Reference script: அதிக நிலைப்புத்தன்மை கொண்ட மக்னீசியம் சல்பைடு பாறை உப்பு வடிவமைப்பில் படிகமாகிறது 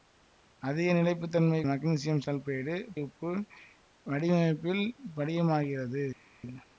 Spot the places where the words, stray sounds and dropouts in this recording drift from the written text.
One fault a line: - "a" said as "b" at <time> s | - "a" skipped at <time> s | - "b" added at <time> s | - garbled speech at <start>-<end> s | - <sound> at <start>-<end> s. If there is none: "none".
- "கொண்ட" skipped at 1.6 s
- "பாறை" skipped at 2.7 s